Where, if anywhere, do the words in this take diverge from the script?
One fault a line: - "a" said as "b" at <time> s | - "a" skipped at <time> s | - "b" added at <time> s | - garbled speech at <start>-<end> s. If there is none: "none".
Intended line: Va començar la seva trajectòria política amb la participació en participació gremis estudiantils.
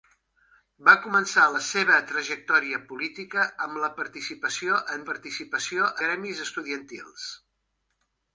none